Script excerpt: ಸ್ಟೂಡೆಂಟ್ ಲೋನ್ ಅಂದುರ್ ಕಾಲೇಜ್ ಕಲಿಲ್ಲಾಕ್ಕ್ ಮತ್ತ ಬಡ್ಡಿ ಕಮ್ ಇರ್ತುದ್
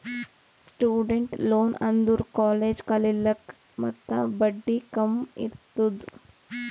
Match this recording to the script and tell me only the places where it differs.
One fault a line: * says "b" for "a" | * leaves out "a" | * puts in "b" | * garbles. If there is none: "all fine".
all fine